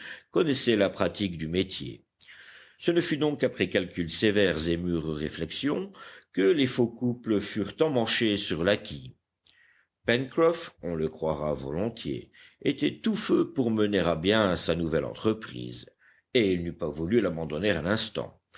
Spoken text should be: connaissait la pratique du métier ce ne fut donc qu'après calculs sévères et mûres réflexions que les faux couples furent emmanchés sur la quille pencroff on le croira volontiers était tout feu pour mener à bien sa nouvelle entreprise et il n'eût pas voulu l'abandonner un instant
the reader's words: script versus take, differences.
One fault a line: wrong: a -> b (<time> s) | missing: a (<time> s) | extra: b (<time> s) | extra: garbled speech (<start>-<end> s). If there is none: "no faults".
no faults